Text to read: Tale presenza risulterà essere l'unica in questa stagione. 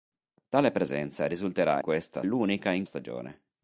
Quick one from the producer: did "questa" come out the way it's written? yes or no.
no